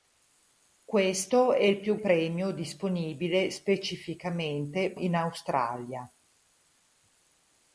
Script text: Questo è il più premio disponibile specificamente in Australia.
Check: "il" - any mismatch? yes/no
no